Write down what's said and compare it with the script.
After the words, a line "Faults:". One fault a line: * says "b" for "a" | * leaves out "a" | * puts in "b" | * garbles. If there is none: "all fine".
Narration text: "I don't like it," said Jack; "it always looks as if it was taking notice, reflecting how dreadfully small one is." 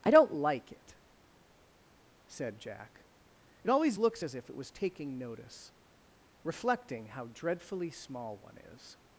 "I don't like it," said Jack; "it always looks as if it was taking notice, reflecting how dreadfully small one is."
Faults:
all fine